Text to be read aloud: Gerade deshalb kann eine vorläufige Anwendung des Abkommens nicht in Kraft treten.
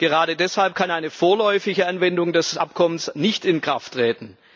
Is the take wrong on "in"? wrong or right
right